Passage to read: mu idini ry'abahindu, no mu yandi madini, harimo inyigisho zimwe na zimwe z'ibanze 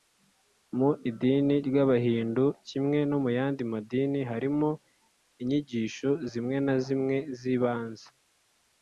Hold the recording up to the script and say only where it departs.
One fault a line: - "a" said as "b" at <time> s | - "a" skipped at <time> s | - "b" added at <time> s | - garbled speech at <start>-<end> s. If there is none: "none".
- "kimwe" added at 2.7 s